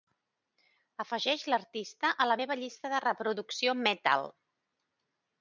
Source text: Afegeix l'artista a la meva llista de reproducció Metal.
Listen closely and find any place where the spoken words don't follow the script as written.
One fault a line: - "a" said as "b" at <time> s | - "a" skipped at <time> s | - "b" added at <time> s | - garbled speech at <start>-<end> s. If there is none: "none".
none